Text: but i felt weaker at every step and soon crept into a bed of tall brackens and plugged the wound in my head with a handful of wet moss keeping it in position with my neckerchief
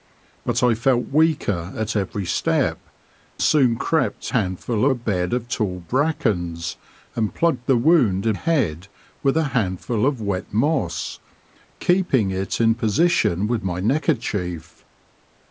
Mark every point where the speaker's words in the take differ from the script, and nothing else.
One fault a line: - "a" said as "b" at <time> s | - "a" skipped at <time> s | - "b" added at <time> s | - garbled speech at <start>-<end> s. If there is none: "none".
- "and" skipped at 2.9 s
- "into" said as "handful" at 4.3 s
- "my" skipped at 8.4 s